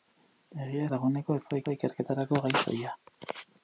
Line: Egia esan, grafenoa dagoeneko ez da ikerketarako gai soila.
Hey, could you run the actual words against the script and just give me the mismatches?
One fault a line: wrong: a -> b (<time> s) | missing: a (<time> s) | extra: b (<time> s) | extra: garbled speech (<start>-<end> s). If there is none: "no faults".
missing: esan grafenoa (0.8 s)
extra: da (1.6 s)